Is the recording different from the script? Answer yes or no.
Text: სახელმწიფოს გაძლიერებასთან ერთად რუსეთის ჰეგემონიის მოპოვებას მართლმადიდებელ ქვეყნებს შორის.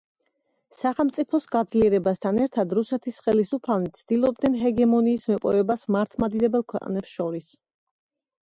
yes